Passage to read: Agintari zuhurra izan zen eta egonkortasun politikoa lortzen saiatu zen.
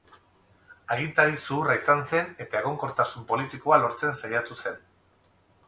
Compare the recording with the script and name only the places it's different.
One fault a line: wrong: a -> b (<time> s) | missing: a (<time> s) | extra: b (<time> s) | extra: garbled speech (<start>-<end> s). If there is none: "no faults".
no faults